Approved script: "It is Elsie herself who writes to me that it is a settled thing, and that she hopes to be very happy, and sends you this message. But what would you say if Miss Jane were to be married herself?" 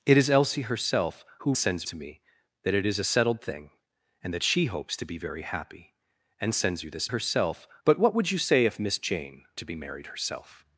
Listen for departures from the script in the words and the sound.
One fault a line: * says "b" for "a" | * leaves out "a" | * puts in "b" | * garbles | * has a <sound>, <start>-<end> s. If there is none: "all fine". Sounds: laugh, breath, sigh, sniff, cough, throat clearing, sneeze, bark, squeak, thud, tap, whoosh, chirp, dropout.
* says "sends" for "writes"
* says "herself" for "message"
* leaves out "were"